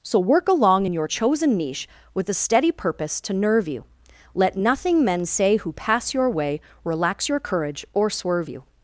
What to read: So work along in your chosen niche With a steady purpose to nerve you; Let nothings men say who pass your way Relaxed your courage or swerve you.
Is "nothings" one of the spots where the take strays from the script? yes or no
yes